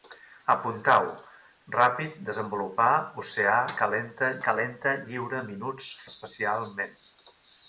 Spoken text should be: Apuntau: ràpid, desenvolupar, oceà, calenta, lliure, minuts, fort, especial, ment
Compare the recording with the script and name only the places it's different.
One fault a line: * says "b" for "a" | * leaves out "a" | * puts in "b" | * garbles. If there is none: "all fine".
* puts in "calenta"
* leaves out "fort"